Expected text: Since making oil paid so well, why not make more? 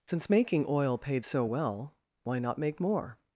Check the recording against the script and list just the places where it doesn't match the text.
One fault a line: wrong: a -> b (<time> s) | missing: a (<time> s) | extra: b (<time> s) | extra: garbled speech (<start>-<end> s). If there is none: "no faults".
no faults